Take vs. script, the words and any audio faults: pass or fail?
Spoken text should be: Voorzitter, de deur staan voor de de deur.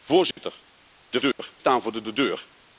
fail